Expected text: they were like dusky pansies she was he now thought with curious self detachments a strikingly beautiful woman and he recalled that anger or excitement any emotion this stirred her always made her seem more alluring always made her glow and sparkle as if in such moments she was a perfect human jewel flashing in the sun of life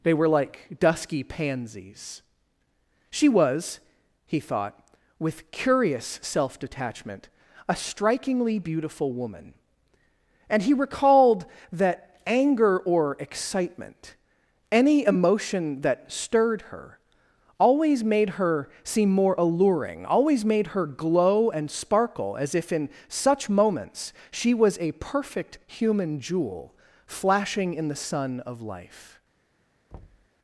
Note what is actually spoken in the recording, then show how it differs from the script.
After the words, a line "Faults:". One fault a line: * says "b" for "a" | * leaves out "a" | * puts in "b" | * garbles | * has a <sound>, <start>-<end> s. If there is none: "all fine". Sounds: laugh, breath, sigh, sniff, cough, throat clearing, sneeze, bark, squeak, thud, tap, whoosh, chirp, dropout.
they were like dusky pansies she was he thought with curious self detachment a strikingly beautiful woman and he recalled that anger or excitement any emotion that stirred her always made her seem more alluring always made her glow and sparkle as if in such moments she was a perfect human jewel flashing in the sun of life
Faults:
* leaves out "now"
* says "detachment" for "detachments"
* says "that" for "this"
* has a thud, 29.9-30.3 s